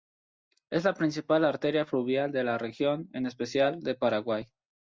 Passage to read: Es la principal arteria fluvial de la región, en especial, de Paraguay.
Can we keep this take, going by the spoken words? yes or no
yes